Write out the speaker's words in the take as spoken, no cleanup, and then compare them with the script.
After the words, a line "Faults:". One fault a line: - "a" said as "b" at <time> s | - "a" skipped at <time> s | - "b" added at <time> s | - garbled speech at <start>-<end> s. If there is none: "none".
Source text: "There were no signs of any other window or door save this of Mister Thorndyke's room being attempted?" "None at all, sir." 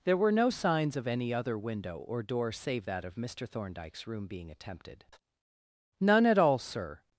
"There were no signs of any other window or door save that of Mister Thorndyke's room being attempted?" "None at all, sir."
Faults:
- "this" said as "that" at 2.9 s